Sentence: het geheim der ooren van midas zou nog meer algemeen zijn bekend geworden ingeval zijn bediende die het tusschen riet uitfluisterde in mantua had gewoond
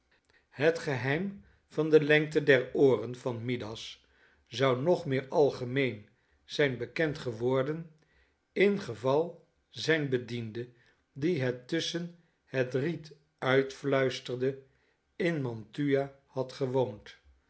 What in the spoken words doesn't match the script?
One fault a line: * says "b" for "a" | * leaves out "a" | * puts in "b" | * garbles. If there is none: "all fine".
* puts in "van de lengte"
* puts in "het"